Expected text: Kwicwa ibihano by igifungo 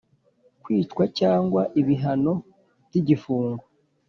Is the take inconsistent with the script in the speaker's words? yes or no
yes